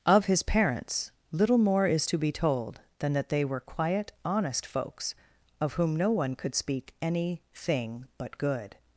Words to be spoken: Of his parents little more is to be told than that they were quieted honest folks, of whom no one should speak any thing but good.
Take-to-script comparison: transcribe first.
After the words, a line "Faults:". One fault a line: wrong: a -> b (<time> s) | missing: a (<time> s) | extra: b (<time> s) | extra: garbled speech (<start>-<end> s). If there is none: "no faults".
Of his parents little more is to be told than that they were quiet honest folks, of whom no one could speak any thing but good.
Faults:
wrong: quieted -> quiet (3.6 s)
wrong: should -> could (6.4 s)